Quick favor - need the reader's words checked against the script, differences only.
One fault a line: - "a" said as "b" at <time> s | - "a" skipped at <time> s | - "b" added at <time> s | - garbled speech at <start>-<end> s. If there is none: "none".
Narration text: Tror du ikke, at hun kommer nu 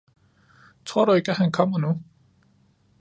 - "hun" said as "han" at 1.4 s